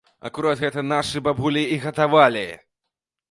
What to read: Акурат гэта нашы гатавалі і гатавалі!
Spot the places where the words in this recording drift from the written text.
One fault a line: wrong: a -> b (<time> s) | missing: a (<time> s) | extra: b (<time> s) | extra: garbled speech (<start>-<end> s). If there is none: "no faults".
wrong: гатавалі -> бабулі (1.2 s)